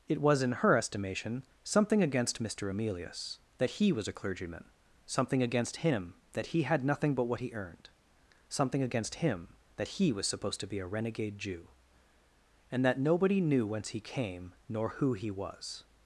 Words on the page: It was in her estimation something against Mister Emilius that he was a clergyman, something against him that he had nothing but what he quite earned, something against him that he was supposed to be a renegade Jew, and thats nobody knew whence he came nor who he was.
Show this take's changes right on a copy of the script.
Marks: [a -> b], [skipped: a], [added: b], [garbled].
It was in her estimation something against Mister Emilius that he was a clergyman, something against him that he had nothing but what he [skipped: quite] earned, something against him that he was supposed to be a renegade Jew, and [thats -> that] nobody knew whence he came nor who he was.